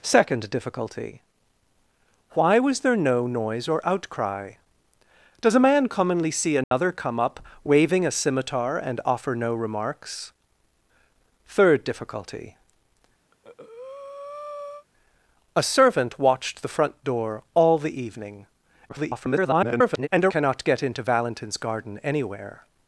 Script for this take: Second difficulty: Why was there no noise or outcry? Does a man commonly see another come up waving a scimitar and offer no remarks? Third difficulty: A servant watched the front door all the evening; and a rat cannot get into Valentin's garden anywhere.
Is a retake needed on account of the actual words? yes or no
yes